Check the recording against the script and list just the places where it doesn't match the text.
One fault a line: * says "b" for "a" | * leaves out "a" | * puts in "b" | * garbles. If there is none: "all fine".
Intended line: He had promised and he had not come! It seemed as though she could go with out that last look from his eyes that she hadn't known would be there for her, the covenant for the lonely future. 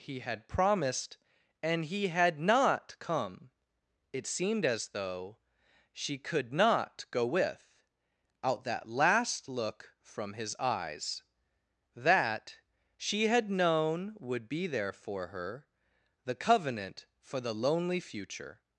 * puts in "not"
* says "had" for "hadn't"